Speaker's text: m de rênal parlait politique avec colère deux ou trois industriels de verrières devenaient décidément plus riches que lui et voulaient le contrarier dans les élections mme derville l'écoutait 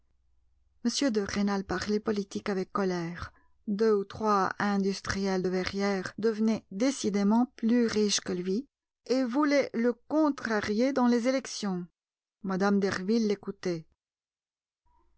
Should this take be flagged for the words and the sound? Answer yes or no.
no